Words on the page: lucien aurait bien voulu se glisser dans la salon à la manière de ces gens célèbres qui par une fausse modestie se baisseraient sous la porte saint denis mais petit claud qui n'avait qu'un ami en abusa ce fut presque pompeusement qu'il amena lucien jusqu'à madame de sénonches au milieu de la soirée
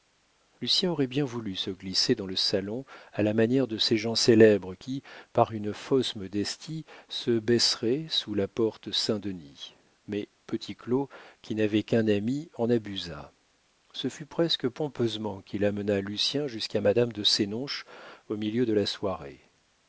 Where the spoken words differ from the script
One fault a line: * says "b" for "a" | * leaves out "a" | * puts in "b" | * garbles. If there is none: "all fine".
* says "le" for "la"